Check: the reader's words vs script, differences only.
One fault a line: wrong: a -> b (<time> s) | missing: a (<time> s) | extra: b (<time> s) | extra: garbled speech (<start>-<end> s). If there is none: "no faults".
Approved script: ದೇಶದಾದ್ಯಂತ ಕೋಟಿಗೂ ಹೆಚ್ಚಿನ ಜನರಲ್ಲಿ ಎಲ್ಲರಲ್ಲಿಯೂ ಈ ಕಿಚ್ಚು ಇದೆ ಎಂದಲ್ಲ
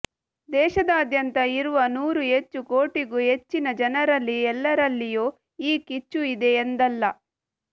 extra: ಇರುವ ನೂರು ಹೆಚ್ಚು (1.6 s)